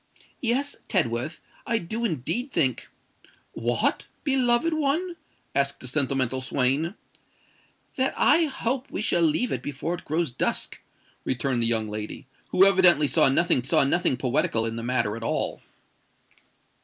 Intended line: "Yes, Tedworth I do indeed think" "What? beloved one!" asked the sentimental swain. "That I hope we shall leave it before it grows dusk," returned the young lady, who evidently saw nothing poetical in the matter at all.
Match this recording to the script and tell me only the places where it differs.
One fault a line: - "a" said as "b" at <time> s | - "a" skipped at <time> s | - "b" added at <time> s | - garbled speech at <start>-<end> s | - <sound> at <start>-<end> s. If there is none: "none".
- "saw nothing" added at 13.6 s